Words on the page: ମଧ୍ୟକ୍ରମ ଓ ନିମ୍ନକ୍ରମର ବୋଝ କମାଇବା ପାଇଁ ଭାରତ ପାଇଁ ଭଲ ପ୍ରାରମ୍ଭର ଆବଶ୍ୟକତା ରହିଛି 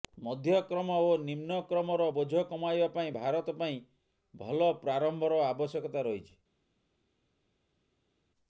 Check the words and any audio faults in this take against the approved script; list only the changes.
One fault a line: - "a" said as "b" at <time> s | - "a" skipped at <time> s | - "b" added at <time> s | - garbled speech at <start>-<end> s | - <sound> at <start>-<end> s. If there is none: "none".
none